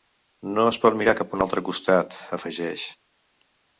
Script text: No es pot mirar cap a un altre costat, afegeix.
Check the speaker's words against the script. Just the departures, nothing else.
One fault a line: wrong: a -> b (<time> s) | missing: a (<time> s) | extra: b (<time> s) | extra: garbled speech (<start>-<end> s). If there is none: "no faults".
no faults